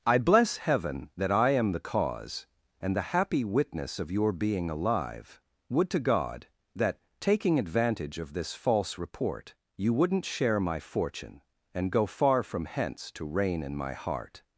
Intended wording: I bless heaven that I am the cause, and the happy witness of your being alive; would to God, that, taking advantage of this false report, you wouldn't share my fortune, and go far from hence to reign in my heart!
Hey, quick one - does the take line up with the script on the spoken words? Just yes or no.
yes